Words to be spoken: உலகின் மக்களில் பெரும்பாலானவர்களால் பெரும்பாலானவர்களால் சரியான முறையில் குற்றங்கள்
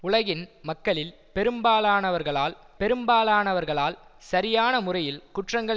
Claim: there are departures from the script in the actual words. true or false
false